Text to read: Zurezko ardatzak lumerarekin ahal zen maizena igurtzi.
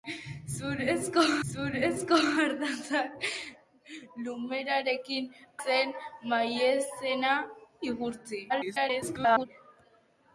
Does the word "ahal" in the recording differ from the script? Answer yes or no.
yes